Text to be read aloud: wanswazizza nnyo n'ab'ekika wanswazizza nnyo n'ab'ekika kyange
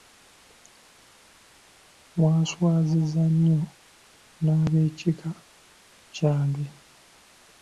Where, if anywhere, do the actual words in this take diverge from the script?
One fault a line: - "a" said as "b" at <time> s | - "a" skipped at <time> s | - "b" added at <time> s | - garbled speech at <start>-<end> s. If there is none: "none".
- "wanswazizza nnyo n'ab'ekika" skipped at 5.3 s